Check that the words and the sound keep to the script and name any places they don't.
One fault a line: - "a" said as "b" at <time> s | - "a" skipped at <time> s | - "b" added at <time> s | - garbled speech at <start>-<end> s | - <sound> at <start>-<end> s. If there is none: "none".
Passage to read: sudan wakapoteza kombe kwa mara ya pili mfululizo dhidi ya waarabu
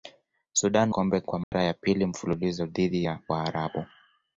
- "wakapoteza" skipped at 0.9 s
- dropout at 1.4-1.5 s